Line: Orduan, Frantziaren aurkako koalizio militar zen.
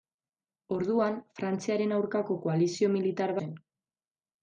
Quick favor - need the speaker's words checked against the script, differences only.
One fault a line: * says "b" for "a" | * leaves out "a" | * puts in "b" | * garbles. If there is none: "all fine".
all fine